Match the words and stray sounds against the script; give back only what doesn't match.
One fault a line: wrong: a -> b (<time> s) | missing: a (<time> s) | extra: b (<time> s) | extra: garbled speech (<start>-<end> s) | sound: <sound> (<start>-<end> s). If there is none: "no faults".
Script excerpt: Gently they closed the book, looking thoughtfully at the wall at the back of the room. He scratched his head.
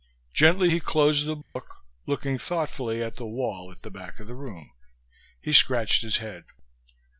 wrong: they -> he (0.7 s)
sound: dropout (1.4-1.6 s)